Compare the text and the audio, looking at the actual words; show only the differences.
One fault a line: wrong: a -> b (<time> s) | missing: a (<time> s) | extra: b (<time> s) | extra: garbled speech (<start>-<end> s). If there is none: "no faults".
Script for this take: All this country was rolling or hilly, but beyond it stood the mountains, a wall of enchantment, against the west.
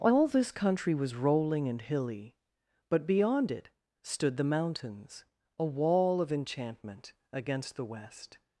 wrong: or -> and (1.7 s)